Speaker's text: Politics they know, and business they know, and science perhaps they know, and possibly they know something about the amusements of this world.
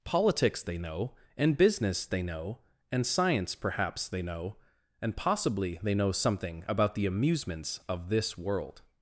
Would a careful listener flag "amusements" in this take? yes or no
no